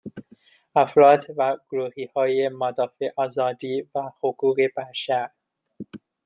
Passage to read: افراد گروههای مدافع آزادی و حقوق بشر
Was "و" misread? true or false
false